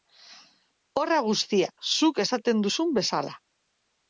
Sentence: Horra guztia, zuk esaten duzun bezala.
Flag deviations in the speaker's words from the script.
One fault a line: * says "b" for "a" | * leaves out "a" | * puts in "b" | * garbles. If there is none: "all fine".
all fine